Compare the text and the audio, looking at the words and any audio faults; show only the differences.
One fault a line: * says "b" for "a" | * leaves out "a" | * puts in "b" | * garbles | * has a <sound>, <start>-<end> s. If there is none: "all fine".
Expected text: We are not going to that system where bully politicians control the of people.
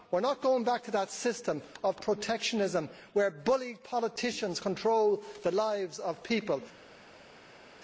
* puts in "back"
* puts in "of protectionism"
* puts in "lives"